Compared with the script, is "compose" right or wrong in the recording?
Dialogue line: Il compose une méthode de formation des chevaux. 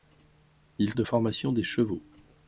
wrong